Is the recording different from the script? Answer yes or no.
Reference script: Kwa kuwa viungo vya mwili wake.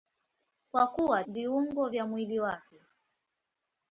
no